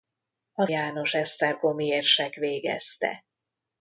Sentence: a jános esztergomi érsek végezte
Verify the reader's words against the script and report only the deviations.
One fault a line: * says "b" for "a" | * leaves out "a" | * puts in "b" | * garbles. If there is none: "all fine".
all fine